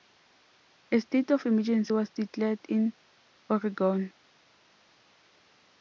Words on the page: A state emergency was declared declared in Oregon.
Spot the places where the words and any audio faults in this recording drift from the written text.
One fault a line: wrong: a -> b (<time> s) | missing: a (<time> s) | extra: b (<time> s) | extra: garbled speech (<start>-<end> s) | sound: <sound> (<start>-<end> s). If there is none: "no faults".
extra: of (1.3 s)
missing: declared (2.6 s)